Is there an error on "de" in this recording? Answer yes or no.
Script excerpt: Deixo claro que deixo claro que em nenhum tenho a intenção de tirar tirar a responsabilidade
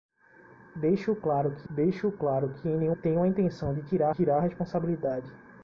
no